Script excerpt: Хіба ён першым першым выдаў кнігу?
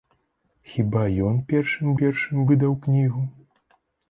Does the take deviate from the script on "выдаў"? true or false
false